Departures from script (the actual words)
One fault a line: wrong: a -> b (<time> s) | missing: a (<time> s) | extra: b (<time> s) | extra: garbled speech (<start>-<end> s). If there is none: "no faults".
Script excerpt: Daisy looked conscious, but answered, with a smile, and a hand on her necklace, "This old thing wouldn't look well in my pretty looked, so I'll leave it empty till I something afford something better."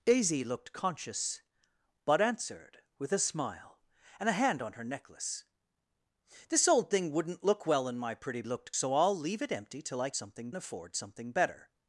no faults